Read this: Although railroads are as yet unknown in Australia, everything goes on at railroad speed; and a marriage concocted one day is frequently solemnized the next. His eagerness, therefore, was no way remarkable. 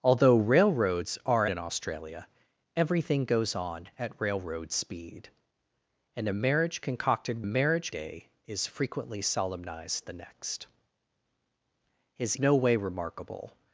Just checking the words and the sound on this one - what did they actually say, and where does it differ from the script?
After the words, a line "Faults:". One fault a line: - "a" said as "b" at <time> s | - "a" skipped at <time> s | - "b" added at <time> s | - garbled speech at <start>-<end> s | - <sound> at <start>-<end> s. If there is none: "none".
Although railroads are in Australia, everything goes on at railroad speed; and a marriage concocted marriage day is frequently solemnized the next. His no way remarkable.
Faults:
- "as yet unknown" skipped at 1.4 s
- "one" said as "marriage" at 7.4 s
- "eagerness therefore was" skipped at 12.4 s